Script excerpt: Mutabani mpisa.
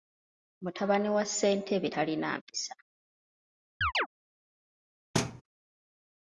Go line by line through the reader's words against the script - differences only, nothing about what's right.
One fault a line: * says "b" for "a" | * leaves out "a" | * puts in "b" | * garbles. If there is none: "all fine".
* puts in "wa ssentebe talina"